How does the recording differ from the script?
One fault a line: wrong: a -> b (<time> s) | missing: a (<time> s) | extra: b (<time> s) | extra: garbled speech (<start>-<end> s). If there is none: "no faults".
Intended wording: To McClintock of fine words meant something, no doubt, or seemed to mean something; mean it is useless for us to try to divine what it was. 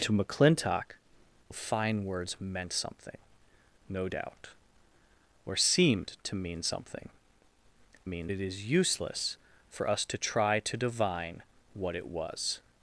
no faults